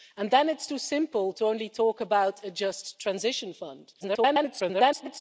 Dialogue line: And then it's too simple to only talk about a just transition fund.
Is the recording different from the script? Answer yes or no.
yes